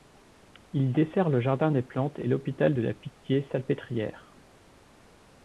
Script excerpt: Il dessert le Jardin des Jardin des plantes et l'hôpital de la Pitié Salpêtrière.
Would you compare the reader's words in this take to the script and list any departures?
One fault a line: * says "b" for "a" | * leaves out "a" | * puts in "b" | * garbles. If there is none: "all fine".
* leaves out "Jardin des"